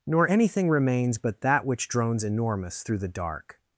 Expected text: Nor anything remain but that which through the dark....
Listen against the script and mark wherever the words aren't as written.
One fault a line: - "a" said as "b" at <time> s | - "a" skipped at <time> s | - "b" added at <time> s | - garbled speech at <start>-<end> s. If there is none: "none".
- "remain" said as "remains" at 0.7 s
- "drones Enormous" added at 1.9 s